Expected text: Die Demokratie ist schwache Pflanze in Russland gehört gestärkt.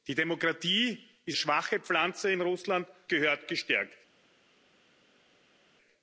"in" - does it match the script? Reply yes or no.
yes